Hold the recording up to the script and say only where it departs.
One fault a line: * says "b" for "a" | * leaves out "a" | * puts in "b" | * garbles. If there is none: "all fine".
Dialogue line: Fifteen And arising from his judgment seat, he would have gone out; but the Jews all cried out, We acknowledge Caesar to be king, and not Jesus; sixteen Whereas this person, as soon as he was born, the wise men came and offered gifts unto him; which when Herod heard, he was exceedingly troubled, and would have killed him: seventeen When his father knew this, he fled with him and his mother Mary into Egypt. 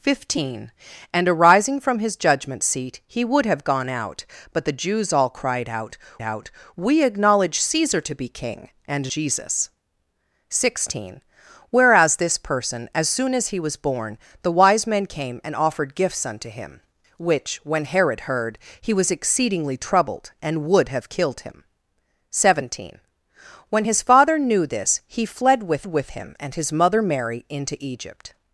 * puts in "out"
* leaves out "not"
* puts in "with"